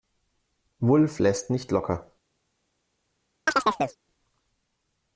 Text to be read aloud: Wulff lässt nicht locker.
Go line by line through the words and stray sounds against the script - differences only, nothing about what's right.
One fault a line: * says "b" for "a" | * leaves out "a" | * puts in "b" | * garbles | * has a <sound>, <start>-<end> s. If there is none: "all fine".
* has a chirp, 3.5-4.0 s